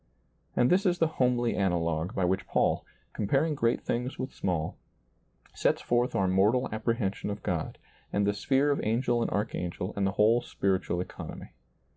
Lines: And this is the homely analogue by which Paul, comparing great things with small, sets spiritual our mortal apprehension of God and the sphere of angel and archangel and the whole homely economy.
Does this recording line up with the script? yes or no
no